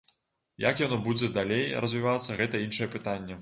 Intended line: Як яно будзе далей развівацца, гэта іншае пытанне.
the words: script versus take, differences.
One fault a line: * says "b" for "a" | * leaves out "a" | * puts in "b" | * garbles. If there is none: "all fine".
all fine